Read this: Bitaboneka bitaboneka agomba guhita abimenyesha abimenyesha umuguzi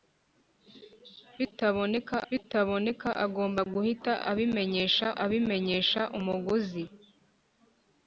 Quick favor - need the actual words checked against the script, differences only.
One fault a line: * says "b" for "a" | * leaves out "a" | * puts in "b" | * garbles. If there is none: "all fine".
all fine